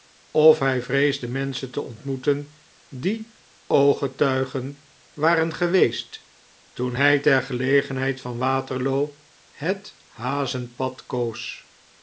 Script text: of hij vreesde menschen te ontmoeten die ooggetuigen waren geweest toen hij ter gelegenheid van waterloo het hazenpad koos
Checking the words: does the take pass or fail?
pass